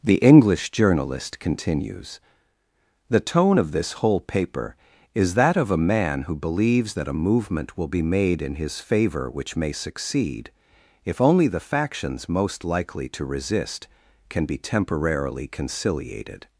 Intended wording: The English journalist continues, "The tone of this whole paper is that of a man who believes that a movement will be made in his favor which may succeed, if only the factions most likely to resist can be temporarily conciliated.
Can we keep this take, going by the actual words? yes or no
yes